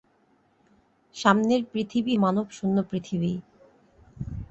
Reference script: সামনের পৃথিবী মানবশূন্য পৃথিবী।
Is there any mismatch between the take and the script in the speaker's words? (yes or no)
no